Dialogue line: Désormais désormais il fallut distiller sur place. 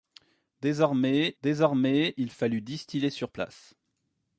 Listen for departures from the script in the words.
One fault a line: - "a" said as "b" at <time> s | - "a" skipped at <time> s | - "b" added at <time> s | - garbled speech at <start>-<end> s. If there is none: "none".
none